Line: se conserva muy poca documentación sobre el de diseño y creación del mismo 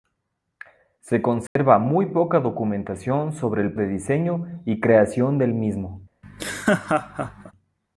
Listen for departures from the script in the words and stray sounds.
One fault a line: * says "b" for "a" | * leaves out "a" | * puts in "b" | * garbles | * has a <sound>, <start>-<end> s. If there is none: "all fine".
* has a dropout, 1.5-1.6 s
* has a laugh, 6.2-7.5 s